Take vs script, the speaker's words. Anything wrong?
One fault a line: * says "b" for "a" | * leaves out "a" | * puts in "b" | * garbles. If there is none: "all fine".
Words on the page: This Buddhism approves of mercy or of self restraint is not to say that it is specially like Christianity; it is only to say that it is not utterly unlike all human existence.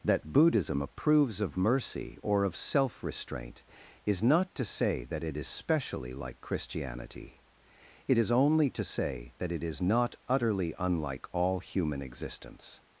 * says "That" for "This"